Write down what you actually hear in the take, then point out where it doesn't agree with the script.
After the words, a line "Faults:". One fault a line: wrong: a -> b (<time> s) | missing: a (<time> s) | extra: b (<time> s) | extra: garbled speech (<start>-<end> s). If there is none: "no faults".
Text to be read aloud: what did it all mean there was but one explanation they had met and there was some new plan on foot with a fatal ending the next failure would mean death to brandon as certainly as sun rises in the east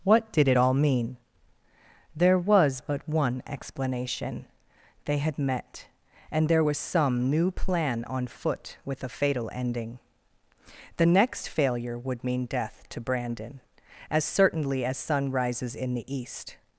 what did it all mean there was but one explanation they had met and there was some new plan on foot with a fatal ending the next failure would mean death to brandon as certainly as sun rises in the east
Faults:
no faults